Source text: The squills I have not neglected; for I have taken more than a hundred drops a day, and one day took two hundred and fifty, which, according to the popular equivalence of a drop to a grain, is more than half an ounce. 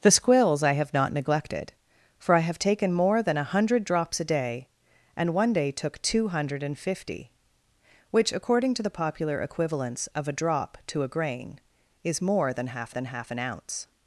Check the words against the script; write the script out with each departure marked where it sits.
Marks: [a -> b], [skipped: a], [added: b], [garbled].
The squills I have not neglected; for I have taken more than a hundred drops a day, and one day took two hundred and fifty, which, according to the popular equivalence of a drop to a grain, is more than half [added: than half] an ounce.